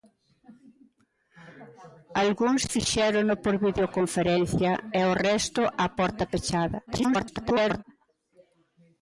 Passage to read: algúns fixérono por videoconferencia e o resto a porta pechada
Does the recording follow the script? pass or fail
fail